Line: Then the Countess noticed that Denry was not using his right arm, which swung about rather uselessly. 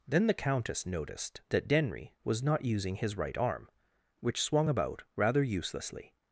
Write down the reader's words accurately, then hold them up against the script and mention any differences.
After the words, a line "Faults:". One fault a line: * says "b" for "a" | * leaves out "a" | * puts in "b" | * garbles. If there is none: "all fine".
Then the Countess noticed that Denry was not using his right arm, which swung about rather uselessly.
Faults:
all fine